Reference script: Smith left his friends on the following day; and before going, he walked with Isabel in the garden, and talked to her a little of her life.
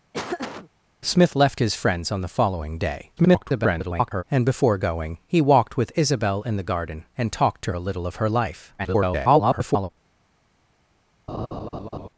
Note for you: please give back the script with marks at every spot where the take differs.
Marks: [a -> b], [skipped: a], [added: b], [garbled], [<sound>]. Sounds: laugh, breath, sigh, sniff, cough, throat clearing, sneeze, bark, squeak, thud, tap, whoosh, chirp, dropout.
[laugh] Smith left his friends on the following day; [garbled] and before going, he walked with Isabel in the garden, and talked to [skipped: her] a little of her life. [garbled] [laugh]